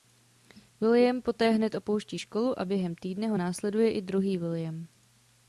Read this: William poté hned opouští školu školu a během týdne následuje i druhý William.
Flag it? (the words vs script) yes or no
yes